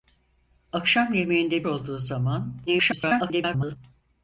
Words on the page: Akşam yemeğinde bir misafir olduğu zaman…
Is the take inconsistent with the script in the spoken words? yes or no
yes